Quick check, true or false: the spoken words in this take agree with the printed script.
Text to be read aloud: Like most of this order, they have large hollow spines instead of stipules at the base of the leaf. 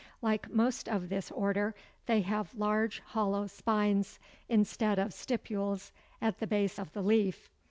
true